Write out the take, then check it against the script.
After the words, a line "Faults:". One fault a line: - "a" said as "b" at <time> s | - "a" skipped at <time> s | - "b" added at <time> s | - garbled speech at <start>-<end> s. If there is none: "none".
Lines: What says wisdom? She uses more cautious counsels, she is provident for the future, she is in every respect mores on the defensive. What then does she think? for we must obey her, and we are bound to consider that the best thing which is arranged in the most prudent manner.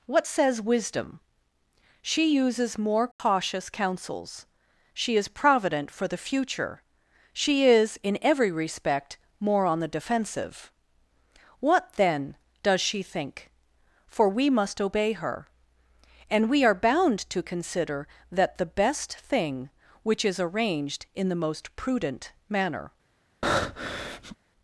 What says wisdom? She uses more cautious counsels, she is provident for the future, she is in every respect more on the defensive. What then does she think? for we must obey her, and we are bound to consider that the best thing which is arranged in the most prudent manner.
Faults:
- "mores" said as "more" at 9.4 s